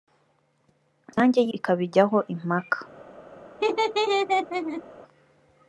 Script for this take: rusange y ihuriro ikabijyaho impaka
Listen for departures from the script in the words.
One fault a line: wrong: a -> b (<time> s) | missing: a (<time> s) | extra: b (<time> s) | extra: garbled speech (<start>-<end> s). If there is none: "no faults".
missing: ihuriro (1.5 s)